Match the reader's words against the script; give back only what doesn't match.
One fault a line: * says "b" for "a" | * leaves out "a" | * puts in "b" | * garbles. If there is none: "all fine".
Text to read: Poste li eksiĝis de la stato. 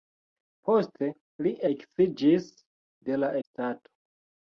all fine